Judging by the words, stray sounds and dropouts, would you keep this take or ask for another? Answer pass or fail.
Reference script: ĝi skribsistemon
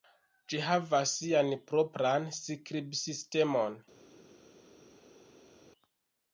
fail